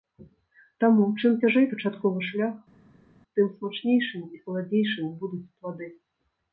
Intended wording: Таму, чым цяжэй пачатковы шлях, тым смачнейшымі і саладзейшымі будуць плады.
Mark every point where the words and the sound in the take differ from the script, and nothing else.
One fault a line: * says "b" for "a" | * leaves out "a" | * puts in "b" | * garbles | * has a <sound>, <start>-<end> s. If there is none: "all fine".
all fine